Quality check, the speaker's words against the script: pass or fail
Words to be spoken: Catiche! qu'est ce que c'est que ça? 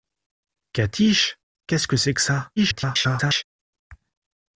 fail